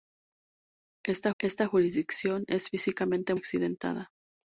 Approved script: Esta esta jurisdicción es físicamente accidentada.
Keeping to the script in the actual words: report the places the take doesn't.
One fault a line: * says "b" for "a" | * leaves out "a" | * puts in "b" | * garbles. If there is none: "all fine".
all fine